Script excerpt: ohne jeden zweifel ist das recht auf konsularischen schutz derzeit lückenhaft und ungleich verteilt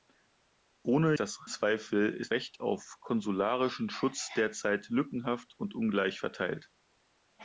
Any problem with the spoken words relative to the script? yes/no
yes